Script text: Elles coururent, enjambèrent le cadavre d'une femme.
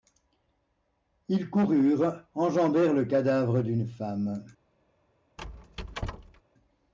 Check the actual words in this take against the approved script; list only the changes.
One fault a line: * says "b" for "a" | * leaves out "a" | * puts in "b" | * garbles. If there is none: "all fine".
* says "Ils" for "Elles"